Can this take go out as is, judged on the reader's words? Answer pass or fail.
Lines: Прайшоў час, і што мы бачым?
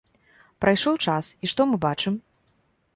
pass